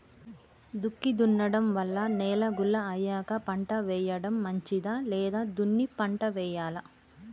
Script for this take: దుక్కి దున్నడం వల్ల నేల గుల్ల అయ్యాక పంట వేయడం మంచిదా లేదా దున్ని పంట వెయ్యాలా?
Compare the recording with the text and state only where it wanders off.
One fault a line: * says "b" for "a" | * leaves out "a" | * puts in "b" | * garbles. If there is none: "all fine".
all fine